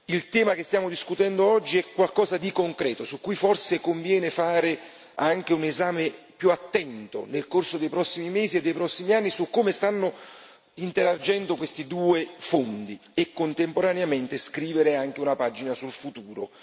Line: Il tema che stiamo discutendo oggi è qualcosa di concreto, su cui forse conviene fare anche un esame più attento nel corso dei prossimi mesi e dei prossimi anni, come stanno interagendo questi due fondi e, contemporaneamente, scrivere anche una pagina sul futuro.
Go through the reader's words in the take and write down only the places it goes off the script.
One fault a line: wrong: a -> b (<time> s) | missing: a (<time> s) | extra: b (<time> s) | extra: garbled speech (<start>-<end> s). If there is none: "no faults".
extra: su (9.3 s)